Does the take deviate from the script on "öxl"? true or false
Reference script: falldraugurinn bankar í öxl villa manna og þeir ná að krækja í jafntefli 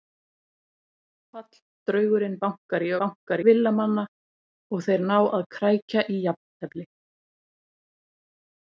true